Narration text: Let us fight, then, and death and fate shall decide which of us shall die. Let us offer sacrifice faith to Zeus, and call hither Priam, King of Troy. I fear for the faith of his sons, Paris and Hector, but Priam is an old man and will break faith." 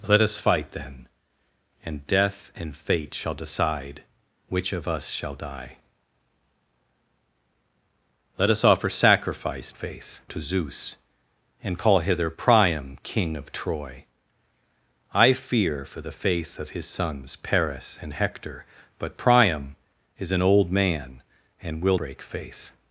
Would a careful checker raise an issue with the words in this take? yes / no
no